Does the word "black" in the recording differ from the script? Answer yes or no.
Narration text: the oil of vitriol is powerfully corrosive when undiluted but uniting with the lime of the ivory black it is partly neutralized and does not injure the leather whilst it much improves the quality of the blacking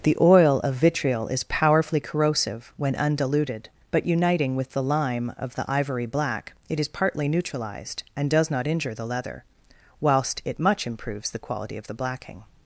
no